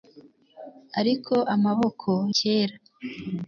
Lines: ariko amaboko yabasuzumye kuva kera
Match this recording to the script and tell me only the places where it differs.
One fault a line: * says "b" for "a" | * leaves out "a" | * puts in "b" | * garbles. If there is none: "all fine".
* leaves out "yabasuzumye kuva"